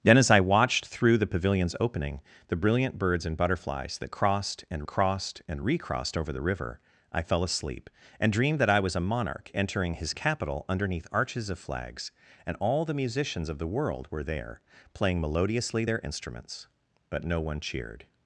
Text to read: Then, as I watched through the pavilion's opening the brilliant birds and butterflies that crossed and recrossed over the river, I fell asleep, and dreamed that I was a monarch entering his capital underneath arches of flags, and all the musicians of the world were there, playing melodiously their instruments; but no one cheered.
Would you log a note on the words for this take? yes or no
yes